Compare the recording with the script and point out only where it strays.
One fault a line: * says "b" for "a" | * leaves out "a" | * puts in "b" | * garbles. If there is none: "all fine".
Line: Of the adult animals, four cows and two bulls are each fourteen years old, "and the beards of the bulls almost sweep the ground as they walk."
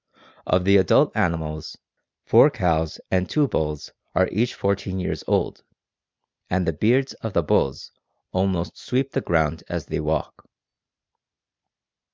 all fine